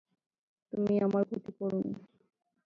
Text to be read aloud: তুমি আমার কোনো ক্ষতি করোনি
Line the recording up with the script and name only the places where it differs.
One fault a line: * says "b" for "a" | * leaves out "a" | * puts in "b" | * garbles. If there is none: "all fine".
* leaves out "কোনো"